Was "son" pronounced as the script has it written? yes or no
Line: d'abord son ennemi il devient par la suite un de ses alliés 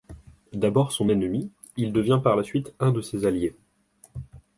yes